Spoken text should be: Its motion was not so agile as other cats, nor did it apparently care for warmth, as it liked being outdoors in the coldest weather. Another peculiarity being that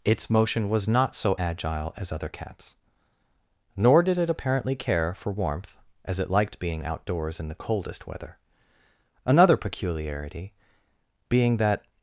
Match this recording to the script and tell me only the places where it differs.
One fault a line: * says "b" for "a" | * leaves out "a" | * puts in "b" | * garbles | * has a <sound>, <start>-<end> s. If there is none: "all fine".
all fine